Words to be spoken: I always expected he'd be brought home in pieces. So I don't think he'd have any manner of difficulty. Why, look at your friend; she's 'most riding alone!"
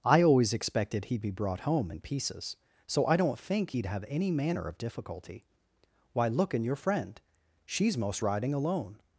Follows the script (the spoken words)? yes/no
no